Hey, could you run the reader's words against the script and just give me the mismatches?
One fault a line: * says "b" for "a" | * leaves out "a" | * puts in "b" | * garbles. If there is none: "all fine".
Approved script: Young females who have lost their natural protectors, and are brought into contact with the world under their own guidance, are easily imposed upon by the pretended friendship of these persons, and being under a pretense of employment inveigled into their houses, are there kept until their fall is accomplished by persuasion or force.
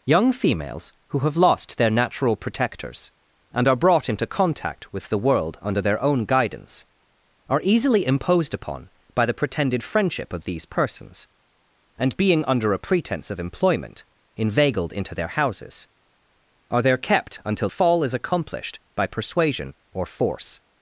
* leaves out "their"